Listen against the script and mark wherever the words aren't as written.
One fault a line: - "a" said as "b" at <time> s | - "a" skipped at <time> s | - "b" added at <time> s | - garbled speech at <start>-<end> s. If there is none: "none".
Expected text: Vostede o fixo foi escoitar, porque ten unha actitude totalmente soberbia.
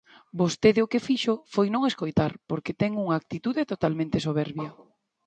- "que" added at 0.9 s
- "non" added at 1.7 s